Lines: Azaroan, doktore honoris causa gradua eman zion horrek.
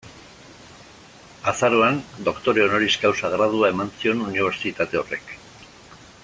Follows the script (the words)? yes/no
no